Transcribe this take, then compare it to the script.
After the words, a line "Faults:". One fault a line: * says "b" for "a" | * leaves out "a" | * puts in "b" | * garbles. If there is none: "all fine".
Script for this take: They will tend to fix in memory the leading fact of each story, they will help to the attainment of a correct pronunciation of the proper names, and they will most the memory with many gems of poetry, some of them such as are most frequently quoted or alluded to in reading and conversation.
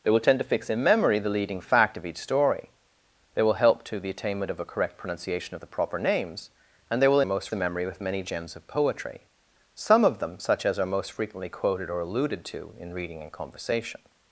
They will tend to fix in memory the leading fact of each story, they will help to the attainment of a correct pronunciation of the proper names, and they will most the memory with many gems of poetry, some of them such as are most frequently quoted or alluded to in reading and conversation.
Faults:
all fine